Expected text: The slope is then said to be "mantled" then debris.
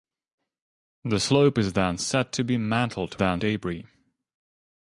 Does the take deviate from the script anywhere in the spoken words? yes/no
no